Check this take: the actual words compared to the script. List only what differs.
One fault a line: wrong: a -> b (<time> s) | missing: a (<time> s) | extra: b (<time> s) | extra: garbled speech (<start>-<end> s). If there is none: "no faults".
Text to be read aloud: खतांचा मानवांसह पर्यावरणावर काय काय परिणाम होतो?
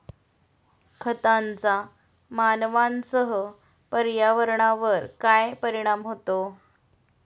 missing: काय (5.5 s)